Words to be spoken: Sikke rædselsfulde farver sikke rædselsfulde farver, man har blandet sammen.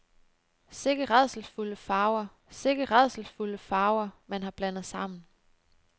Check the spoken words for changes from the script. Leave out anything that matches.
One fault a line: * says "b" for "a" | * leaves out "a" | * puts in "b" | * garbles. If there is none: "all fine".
all fine